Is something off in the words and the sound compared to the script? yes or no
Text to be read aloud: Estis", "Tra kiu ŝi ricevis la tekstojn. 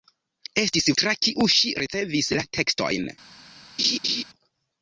yes